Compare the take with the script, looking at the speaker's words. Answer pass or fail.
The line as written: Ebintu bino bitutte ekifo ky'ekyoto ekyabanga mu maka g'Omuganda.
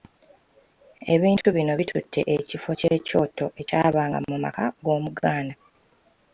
pass